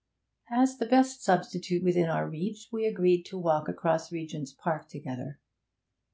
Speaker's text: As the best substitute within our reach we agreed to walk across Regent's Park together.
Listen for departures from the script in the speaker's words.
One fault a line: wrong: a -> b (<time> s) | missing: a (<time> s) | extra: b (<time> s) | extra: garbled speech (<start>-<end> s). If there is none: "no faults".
no faults